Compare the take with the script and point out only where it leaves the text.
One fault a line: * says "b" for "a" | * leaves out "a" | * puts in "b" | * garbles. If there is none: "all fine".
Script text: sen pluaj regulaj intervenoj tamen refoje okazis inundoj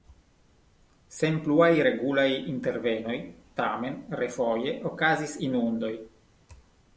all fine